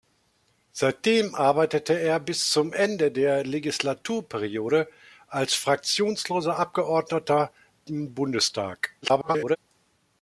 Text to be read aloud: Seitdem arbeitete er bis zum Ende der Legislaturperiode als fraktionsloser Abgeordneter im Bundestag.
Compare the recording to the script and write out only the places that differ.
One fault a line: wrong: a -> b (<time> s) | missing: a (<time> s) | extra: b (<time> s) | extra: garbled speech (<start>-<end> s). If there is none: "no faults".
extra: garbled speech (9.0-9.6 s)